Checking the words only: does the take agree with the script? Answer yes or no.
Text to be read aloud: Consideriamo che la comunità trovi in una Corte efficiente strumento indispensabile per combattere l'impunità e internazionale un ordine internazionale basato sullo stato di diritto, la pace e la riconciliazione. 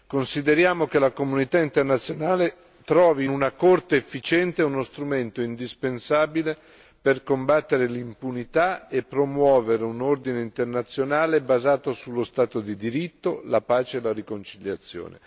no